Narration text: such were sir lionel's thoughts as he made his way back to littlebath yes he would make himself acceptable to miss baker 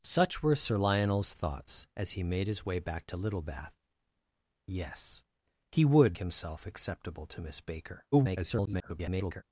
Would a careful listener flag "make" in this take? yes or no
yes